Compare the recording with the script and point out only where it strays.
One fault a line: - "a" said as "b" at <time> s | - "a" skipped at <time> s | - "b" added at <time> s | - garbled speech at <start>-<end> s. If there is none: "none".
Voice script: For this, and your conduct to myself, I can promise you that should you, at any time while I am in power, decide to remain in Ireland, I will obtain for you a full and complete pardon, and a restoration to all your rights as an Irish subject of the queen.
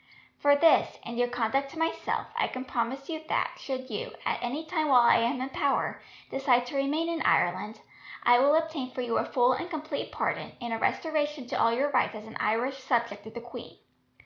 none